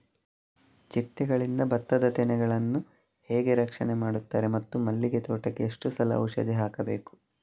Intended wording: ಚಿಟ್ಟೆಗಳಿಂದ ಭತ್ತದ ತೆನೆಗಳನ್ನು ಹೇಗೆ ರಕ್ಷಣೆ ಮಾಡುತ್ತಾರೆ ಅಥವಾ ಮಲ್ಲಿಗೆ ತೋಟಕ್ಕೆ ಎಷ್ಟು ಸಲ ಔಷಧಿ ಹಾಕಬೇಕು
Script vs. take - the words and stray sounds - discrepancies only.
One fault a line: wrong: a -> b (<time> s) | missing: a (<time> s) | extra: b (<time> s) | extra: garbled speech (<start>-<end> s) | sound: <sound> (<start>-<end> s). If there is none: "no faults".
wrong: ಅಥವಾ -> ಮತ್ತು (4.5 s)